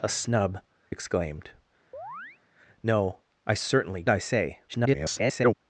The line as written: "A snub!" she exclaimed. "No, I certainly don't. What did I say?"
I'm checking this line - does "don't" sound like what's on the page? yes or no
no